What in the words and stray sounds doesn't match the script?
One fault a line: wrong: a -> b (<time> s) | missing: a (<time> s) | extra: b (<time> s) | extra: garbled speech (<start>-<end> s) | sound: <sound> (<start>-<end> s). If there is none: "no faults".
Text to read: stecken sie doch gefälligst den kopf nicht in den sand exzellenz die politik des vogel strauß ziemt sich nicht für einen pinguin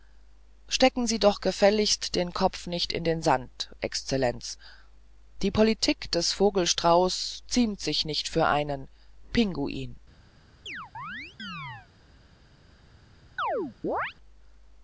sound: chirp (10.7-11.9 s)
sound: chirp (13.4-14.1 s)